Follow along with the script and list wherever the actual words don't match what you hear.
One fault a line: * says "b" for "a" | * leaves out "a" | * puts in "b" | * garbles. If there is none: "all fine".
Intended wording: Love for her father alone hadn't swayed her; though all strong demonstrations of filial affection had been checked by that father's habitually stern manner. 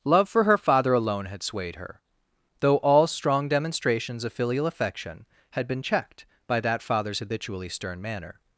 * says "had" for "hadn't"